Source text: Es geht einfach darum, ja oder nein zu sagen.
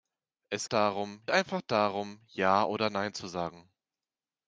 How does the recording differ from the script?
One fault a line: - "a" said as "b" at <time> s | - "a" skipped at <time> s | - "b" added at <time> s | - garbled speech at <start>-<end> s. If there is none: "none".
- "geht" said as "darum" at 0.6 s